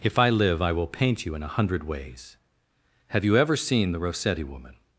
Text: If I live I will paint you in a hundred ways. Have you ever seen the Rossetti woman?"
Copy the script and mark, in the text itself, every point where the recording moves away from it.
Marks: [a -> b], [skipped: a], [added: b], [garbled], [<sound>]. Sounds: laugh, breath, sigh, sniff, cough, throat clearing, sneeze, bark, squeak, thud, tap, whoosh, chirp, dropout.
If I live I will paint you in a hundred ways. Have you ever seen the Rossetti woman?"